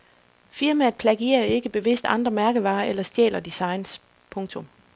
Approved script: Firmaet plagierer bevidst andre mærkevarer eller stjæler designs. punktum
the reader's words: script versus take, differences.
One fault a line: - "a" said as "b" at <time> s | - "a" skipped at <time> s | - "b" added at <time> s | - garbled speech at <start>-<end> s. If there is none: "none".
- "ikke" added at 1.4 s